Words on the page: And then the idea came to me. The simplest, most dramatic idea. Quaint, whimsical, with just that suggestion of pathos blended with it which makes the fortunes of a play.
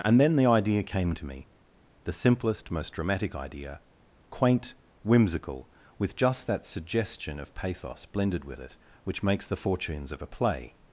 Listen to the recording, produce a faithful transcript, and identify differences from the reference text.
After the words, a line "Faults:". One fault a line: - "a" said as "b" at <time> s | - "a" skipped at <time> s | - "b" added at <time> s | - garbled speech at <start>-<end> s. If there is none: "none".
And then the idea came to me. The simplest, most dramatic idea. Quaint, whimsical, with just that suggestion of pathos blended with it which makes the fortunes of a play.
Faults:
none